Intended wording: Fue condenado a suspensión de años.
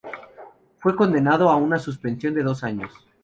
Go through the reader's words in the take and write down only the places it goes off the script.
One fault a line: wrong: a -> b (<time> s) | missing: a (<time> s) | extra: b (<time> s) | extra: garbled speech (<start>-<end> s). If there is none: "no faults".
extra: una (1.6 s)
extra: dos (2.4 s)